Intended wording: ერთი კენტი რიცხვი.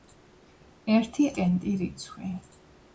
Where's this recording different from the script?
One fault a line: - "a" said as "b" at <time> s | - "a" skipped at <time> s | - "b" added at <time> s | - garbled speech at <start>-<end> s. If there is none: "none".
none